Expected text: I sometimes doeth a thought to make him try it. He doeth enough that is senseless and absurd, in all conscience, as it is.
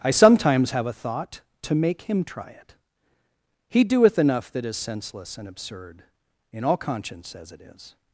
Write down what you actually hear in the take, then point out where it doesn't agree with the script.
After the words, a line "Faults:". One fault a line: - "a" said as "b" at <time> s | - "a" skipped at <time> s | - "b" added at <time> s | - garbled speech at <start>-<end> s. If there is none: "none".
I sometimes have a thought to make him try it. He doeth enough that is senseless and absurd, in all conscience, as it is.
Faults:
- "doeth" said as "have" at 0.7 s